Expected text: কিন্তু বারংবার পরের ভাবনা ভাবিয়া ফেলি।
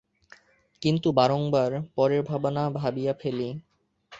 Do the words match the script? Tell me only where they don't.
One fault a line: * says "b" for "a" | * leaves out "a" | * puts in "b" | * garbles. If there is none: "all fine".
all fine